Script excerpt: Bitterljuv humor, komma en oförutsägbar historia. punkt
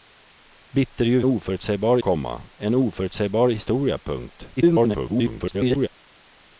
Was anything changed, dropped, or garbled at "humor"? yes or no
yes